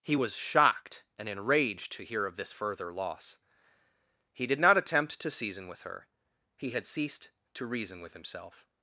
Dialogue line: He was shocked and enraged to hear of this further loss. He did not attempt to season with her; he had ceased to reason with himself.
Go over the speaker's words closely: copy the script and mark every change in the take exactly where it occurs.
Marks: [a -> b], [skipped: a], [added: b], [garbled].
He was shocked and enraged to hear of this further loss. He did not attempt to season with her; he had ceased to reason with himself.